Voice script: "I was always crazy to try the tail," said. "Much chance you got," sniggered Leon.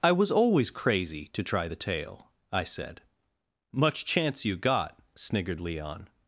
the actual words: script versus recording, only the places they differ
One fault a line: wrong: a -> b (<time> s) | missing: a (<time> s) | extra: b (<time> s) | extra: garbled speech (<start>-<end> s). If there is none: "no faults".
extra: I (2.5 s)